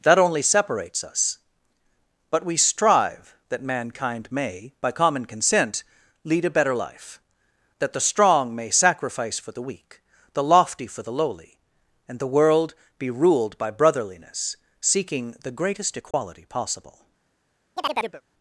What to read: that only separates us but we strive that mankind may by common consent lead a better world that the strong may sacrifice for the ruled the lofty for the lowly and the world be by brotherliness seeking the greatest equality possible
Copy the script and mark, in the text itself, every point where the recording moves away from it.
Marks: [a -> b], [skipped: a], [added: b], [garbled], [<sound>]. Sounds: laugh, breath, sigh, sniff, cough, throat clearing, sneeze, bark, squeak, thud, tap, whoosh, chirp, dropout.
that only separates us but we strive that mankind may by common consent lead a better [world -> life] that the strong may sacrifice for the [ruled -> weak] the lofty for the lowly and the world be [added: ruled] by brotherliness seeking the greatest equality [dropout] possible [chirp]